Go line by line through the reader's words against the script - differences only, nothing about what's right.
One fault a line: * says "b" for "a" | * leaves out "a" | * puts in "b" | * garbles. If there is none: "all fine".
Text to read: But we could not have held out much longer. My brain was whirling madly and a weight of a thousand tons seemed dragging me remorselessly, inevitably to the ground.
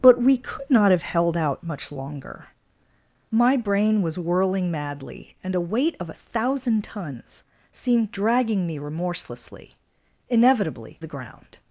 * leaves out "to"